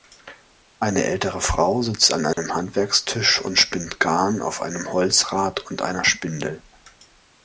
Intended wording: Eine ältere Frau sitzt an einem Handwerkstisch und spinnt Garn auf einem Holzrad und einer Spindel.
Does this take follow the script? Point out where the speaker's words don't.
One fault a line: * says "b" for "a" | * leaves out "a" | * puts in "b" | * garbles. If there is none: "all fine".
all fine